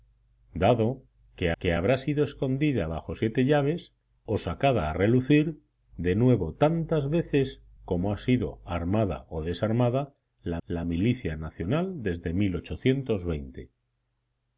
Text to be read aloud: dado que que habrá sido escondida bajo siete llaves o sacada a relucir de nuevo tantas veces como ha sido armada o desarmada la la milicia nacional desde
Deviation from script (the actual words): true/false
false